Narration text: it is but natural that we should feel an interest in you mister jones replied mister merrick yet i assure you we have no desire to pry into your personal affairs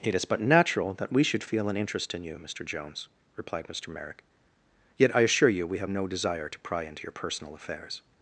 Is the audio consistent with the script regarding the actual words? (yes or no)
yes